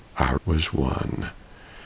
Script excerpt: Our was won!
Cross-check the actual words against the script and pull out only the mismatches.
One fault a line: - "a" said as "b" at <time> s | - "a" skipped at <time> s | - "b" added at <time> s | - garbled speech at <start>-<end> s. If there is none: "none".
none